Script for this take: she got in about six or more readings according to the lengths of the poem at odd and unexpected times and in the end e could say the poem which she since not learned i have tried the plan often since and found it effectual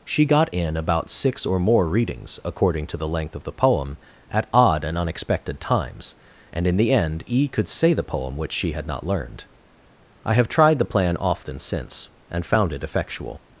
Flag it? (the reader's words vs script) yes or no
yes